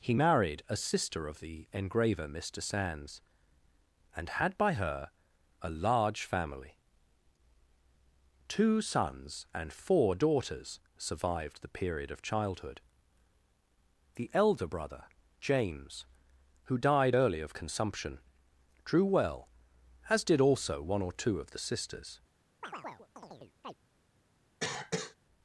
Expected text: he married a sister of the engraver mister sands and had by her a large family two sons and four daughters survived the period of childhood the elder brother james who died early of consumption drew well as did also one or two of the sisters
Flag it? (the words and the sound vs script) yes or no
yes